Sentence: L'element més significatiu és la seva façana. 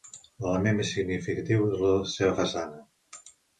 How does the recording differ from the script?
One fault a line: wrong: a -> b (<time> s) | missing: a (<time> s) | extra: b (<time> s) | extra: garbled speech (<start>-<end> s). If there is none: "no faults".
no faults